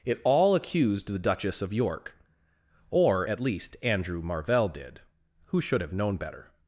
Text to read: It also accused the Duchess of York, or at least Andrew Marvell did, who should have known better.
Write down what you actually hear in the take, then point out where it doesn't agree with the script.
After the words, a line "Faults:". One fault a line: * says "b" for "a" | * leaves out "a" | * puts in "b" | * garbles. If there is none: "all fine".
It all accused the Duchess of York, or at least Andrew Marvell did, who should have known better.
Faults:
* says "all" for "also"